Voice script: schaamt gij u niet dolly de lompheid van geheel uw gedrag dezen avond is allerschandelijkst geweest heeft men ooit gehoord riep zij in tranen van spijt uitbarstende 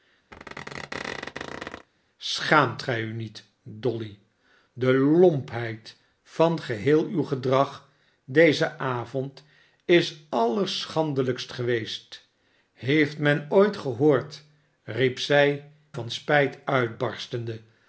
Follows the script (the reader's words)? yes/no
no